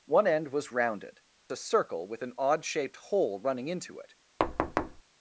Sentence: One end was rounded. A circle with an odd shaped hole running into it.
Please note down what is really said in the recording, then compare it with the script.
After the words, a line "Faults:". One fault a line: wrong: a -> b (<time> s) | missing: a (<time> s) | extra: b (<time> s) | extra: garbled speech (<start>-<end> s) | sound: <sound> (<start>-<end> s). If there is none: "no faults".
One end was rounded. A circle with an odd shaped hole running into it.
Faults:
sound: thud (4.4-5.0 s)